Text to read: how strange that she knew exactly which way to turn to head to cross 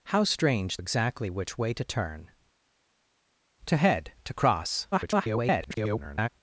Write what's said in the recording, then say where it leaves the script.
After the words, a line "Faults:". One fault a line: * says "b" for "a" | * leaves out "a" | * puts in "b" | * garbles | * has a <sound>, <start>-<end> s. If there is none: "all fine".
how strange exactly which way to turn to head to cross [garbled]
Faults:
* leaves out "that she knew"
* garbles